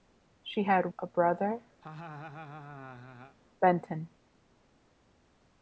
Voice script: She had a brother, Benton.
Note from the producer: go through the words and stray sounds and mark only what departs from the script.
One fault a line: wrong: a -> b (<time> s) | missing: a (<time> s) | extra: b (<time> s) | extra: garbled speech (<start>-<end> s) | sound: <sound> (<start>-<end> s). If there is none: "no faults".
sound: laugh (1.8-3.4 s)